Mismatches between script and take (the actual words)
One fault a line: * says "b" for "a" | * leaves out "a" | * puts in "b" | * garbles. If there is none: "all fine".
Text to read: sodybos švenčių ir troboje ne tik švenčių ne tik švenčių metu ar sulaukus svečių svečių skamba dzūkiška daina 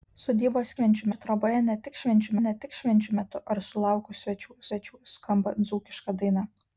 all fine